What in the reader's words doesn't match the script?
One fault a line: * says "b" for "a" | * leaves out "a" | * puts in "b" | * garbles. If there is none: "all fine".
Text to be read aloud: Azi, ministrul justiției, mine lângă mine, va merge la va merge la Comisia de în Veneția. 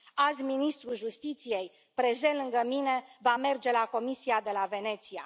* says "prezent" for "mine"
* leaves out "va merge la"
* says "la" for "în"